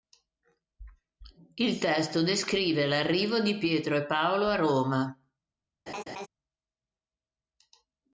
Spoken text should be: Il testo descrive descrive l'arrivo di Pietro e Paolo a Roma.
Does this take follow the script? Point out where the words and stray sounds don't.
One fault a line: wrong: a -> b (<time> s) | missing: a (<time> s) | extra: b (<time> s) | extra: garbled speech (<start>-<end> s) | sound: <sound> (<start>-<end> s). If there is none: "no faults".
missing: descrive (2.9 s)
sound: laugh (5.9-6.3 s)